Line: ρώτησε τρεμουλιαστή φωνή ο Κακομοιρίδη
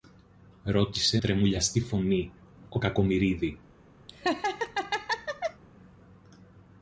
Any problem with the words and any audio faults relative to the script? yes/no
yes